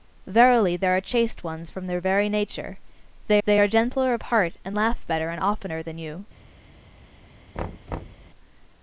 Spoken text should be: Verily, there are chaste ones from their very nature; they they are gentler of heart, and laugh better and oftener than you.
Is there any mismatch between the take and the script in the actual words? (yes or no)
no